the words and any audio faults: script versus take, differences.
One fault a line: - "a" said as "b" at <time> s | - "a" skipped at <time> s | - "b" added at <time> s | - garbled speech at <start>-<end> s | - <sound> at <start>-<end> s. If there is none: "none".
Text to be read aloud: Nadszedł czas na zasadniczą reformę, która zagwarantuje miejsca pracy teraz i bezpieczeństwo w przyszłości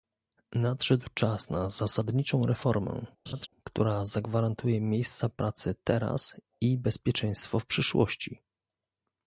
- laugh at 3.3-3.5 s